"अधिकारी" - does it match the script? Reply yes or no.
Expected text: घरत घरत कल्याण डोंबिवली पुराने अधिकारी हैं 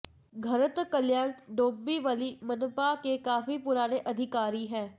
yes